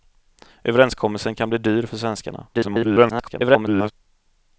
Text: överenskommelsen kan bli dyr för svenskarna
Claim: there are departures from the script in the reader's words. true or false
true